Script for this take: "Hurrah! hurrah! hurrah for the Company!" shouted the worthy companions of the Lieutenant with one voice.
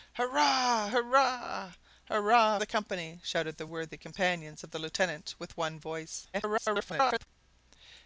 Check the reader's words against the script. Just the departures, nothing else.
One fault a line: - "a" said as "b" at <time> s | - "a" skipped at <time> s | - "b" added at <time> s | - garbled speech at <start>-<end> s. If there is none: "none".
- "for" skipped at 2.6 s
- garbled speech at 6.3-7.3 s